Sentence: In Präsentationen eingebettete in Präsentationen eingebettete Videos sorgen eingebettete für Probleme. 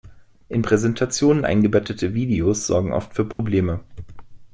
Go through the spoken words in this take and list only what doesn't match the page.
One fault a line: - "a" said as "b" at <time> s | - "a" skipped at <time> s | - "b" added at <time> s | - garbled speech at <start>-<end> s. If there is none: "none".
- "in Präsentationen eingebettete" skipped at 2.1 s
- "eingebettete" said as "oft" at 2.9 s